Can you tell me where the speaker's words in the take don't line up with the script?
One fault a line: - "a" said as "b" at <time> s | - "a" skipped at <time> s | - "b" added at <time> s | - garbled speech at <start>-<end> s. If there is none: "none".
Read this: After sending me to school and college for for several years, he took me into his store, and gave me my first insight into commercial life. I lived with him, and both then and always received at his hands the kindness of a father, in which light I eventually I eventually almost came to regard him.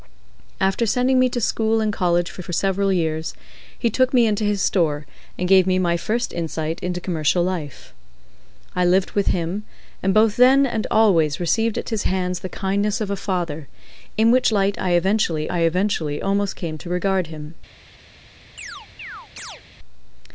none